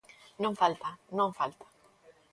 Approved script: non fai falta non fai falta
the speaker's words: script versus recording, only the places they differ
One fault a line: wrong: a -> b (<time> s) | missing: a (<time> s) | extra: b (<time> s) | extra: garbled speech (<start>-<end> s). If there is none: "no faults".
missing: fai (0.5 s)
missing: fai (1.3 s)